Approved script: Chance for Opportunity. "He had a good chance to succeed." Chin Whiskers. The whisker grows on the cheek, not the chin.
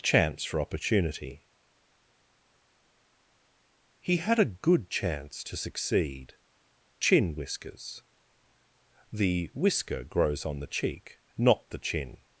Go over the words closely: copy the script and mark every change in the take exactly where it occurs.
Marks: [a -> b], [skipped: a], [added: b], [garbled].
Chance for Opportunity. "He had a good chance to succeed." Chin Whiskers. The whisker grows on the cheek, not the chin.